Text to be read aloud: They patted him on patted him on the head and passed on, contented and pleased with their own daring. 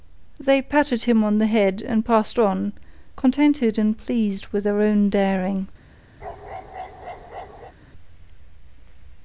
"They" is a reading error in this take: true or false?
false